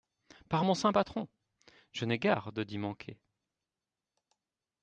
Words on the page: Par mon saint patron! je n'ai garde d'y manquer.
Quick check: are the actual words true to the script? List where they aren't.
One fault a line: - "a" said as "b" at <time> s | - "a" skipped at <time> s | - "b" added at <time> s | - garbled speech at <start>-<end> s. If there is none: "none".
none